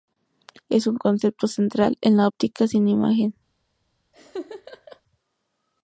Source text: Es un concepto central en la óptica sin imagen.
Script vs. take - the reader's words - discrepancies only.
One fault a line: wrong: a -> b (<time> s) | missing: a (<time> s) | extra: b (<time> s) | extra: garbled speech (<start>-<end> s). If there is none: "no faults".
no faults